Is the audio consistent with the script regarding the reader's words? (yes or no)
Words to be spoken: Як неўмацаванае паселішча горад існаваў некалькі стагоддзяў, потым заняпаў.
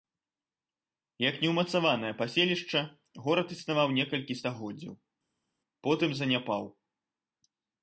yes